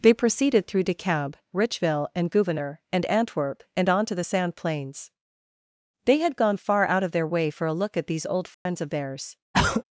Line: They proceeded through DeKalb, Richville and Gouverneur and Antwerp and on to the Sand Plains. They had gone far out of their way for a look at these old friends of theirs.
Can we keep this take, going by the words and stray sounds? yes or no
no